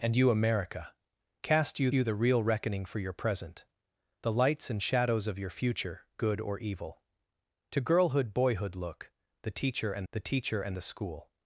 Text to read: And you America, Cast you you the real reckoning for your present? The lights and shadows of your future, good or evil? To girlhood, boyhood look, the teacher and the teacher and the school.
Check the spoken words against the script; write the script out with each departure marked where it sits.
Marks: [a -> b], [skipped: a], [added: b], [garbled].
And you America, Cast you you the real reckoning for your present? The lights and shadows of your future, good or evil? To girlhood, boyhood look, the teacher and the teacher and the school.